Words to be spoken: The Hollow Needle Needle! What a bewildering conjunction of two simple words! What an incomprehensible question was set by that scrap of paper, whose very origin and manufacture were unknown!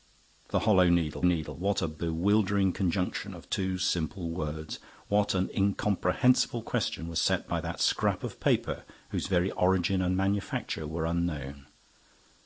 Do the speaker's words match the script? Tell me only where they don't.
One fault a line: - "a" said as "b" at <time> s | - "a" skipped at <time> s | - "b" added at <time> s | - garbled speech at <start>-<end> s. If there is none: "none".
none